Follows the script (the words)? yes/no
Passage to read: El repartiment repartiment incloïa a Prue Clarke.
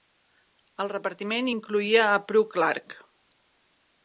no